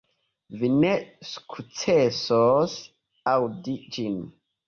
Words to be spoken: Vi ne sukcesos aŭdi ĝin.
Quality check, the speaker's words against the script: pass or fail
pass